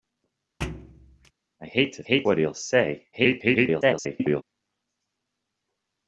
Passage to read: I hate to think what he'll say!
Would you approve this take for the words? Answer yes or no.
no